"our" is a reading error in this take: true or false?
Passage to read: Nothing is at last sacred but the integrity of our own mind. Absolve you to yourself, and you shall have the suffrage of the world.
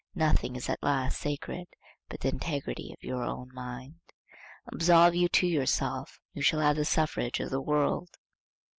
true